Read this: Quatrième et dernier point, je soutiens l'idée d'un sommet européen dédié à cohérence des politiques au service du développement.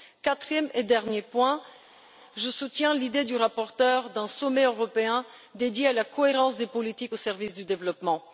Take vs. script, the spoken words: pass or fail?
fail